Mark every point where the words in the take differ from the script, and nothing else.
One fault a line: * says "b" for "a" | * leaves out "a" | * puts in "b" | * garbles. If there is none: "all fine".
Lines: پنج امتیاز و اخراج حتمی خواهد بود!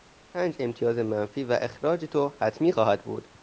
* puts in "منفی"
* puts in "تو"